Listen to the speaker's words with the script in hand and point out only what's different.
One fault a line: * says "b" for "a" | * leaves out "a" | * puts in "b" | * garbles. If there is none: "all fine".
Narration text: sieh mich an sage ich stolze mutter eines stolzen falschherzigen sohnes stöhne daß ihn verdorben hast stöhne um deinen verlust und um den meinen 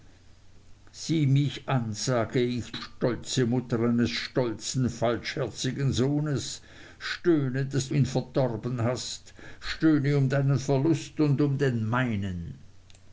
all fine